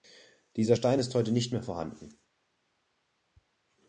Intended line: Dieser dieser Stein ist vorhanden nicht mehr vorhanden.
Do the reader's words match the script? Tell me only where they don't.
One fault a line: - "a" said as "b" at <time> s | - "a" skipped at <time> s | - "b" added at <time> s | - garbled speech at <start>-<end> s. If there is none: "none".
- "dieser" skipped at 0.8 s
- "vorhanden" said as "heute" at 1.1 s